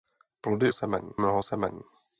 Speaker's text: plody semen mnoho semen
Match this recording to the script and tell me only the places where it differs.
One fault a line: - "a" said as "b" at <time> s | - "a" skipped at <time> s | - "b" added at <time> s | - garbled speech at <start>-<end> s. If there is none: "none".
none